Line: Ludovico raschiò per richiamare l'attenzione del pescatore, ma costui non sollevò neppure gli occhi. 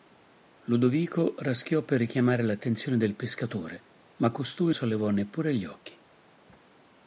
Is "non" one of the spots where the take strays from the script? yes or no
yes